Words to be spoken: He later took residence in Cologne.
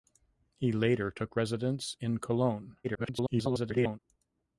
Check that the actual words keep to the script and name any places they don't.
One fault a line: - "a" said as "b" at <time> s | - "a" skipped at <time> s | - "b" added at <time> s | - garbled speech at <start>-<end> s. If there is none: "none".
- garbled speech at 2.8-4.0 s